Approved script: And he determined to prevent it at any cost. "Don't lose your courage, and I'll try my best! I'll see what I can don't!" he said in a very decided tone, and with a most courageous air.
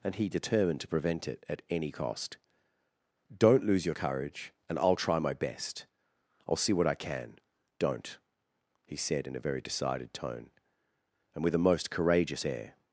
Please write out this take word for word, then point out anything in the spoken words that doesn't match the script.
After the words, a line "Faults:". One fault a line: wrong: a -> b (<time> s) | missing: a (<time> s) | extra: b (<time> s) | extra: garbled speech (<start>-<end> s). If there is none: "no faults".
And he determined to prevent it at any cost. "Don't lose your courage, and I'll try my best! I'll see what I can don't!" he said in a very decided tone, and with a most courageous air.
Faults:
no faults